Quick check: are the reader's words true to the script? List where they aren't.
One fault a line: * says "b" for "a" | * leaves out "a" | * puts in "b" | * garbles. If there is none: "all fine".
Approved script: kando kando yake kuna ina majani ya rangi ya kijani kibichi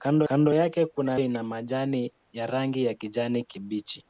all fine